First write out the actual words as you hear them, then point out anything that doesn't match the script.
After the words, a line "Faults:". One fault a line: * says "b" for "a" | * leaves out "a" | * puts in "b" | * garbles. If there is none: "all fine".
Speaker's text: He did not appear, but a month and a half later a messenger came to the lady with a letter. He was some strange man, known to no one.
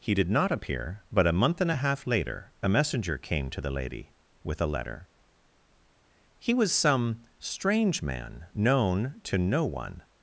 He did not appear, but a month and a half later a messenger came to the lady with a letter. He was some strange man, known to no one.
Faults:
all fine